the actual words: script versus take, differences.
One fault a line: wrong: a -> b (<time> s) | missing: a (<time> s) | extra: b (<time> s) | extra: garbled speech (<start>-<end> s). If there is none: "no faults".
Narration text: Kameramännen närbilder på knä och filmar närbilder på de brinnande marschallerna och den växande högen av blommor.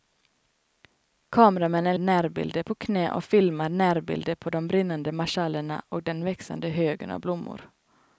no faults